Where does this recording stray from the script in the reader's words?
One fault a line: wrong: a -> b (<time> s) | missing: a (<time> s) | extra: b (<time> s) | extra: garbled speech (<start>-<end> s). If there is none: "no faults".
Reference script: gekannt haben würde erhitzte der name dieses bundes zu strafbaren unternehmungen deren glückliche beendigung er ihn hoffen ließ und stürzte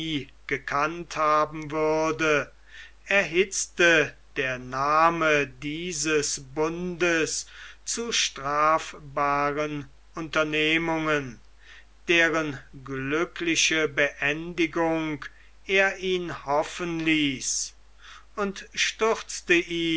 no faults